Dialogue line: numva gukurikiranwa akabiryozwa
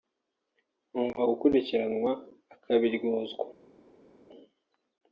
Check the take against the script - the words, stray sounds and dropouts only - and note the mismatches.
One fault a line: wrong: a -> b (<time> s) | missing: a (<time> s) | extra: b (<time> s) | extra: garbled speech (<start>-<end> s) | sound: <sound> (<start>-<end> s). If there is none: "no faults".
no faults